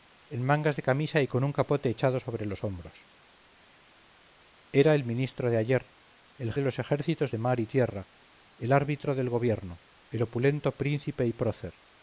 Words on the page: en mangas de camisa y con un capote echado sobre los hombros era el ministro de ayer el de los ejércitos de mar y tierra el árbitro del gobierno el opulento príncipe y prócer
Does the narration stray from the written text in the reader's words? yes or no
no